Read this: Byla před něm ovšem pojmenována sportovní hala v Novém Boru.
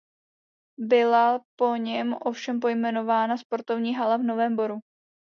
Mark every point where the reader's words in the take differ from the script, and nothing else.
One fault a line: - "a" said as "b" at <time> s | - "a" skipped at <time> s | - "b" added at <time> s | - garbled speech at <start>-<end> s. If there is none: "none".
- "před" said as "po" at 1.6 s